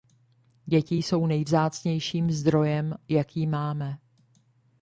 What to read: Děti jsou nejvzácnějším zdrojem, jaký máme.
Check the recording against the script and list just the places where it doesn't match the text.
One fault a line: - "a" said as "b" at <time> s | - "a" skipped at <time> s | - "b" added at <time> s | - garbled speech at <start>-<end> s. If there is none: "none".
none